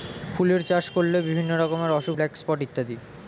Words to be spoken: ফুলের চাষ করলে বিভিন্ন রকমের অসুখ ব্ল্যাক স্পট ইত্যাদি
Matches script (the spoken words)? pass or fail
pass